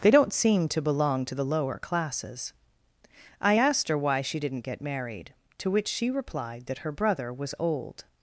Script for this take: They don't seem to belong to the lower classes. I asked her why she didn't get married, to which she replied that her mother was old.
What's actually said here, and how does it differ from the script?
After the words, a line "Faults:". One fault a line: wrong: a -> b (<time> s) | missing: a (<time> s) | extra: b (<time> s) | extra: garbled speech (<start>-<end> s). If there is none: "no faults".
They don't seem to belong to the lower classes. I asked her why she didn't get married, to which she replied that her brother was old.
Faults:
wrong: mother -> brother (6.9 s)